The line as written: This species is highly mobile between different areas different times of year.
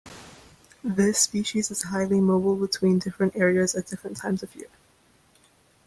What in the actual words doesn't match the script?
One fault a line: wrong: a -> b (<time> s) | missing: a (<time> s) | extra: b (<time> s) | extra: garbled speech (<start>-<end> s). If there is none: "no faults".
extra: at (3.8 s)